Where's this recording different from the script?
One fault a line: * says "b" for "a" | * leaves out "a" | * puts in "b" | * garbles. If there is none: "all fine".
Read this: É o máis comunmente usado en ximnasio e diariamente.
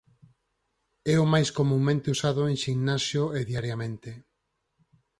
all fine